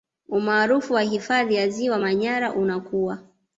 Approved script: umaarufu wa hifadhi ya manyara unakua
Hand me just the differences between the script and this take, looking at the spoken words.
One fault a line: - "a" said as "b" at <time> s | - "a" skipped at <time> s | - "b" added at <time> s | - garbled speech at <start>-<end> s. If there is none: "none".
- "ziwa" added at 1.7 s